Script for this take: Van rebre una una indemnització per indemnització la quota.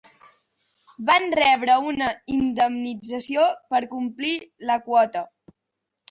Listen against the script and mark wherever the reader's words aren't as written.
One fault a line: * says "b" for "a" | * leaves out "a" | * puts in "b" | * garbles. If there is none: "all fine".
* leaves out "una"
* says "complir" for "indemnització"